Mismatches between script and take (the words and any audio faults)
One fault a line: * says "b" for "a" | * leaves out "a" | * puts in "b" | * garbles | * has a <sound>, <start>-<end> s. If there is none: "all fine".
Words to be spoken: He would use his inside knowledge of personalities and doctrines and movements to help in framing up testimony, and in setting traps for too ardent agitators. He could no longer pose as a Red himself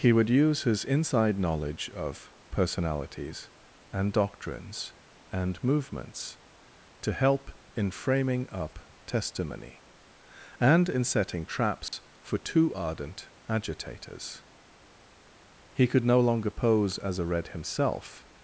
* has a dropout, 11.9-11.9 s